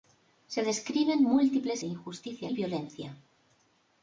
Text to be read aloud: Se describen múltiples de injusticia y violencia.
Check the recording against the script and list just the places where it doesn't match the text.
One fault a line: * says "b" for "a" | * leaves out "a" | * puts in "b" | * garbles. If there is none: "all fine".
all fine